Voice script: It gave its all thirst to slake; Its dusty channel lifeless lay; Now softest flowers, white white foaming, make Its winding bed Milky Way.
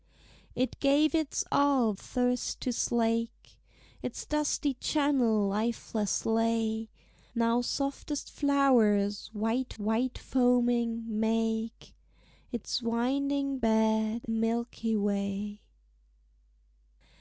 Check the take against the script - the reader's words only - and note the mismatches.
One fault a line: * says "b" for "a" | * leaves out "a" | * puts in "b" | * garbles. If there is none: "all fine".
all fine